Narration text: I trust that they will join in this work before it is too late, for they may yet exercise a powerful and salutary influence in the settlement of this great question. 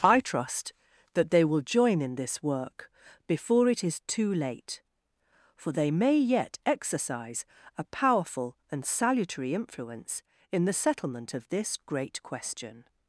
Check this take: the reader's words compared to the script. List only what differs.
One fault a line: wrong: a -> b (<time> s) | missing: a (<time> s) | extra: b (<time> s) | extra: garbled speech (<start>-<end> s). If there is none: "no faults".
no faults